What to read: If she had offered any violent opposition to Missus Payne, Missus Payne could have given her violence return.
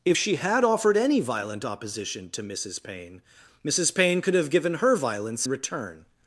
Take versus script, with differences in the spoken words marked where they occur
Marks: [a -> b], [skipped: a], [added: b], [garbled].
If she had offered any violent opposition to Missus Payne, Missus Payne could have given her violence return.